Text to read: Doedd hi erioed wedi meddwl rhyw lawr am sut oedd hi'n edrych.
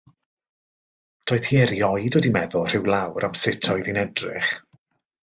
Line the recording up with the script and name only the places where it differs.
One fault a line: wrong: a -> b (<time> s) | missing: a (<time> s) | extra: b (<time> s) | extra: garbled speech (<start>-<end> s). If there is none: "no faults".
no faults